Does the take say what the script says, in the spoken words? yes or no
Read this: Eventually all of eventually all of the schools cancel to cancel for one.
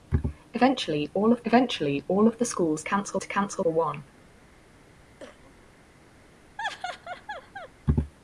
yes